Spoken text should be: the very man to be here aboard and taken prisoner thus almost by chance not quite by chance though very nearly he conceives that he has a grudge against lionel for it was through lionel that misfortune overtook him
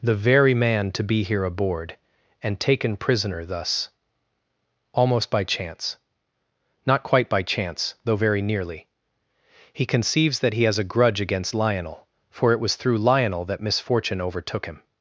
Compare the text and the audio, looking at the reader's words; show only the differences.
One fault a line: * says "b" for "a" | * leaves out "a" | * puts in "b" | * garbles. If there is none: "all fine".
all fine